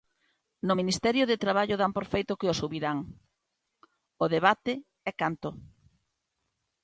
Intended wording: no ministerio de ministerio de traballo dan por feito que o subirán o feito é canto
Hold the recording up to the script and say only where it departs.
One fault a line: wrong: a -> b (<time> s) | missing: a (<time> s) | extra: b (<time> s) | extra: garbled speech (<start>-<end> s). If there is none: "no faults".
missing: ministerio de (1.4 s)
wrong: feito -> debate (4.3 s)